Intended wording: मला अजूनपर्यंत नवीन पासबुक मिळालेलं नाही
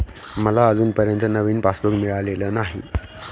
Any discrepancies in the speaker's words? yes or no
no